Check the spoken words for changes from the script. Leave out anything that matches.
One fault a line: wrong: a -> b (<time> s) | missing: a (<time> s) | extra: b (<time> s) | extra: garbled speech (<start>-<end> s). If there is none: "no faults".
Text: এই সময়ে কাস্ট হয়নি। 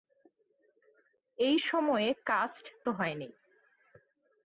no faults